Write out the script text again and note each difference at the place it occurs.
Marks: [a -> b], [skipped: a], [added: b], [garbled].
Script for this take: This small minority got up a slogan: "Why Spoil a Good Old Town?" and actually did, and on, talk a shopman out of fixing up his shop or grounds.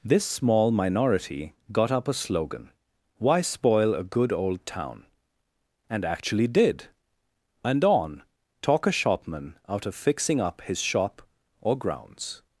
This small minority got up a slogan: "Why Spoil a Good Old Town?" and actually did, and on, talk a shopman out of fixing up his shop or grounds.